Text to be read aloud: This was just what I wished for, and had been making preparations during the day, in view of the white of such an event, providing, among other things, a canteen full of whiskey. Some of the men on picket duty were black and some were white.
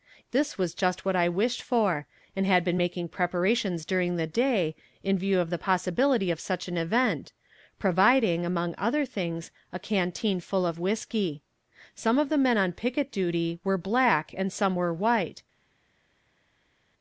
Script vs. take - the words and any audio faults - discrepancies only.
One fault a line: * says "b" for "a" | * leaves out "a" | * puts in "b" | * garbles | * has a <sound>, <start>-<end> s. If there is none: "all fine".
* says "possibility" for "white"